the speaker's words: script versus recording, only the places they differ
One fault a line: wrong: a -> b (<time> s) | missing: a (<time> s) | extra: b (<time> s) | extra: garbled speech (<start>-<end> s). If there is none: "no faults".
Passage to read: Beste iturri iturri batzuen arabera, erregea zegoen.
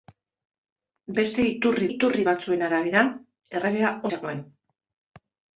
no faults